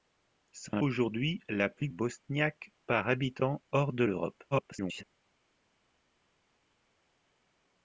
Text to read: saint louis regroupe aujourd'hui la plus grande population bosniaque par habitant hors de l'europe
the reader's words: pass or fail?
fail